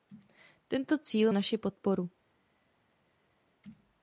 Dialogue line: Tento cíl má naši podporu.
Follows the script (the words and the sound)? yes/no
no